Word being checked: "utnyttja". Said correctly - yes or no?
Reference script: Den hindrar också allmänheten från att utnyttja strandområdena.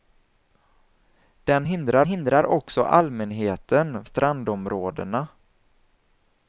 no